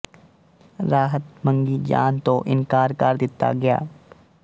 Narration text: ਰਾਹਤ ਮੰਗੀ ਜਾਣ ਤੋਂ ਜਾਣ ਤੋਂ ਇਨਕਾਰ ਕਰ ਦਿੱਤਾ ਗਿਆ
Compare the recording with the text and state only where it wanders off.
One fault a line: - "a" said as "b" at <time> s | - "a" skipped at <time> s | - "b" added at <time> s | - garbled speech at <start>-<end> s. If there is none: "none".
- "ਜਾਣ ਤੋਂ" skipped at 2.4 s